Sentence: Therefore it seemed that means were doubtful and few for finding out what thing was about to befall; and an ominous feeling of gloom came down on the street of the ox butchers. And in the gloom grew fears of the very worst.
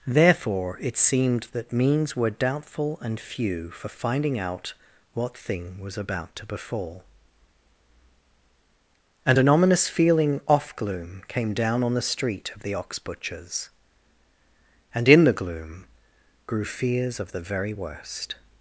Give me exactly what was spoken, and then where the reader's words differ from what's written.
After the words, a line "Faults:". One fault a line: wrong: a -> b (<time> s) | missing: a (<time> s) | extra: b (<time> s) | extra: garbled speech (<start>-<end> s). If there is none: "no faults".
Therefore it seemed that means were doubtful and few for finding out what thing was about to befall; and an ominous feeling off gloom came down on the street of the ox butchers. And in the gloom grew fears of the very worst.
Faults:
wrong: of -> off (10.5 s)